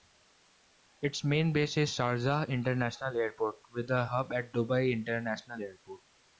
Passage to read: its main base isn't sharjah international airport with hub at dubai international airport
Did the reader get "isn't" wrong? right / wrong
wrong